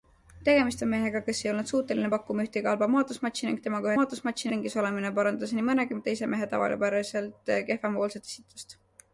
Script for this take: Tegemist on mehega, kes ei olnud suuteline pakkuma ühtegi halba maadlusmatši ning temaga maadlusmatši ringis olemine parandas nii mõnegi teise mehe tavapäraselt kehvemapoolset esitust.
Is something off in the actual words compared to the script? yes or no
no